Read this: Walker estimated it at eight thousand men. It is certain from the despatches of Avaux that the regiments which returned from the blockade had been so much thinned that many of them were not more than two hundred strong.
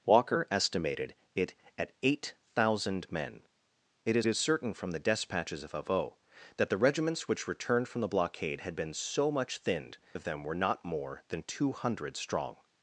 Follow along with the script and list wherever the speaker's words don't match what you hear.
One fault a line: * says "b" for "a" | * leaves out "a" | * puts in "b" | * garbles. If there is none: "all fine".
* puts in "is"
* leaves out "that many"